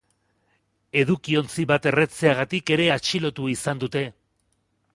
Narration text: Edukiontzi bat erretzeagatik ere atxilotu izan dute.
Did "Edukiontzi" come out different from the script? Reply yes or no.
no